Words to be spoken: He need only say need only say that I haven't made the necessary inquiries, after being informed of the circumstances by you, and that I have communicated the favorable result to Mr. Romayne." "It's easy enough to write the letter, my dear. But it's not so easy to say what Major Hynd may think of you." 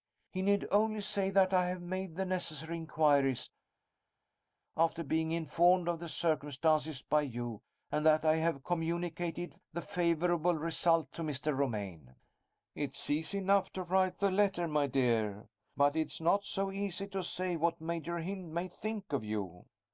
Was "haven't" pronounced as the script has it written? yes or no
no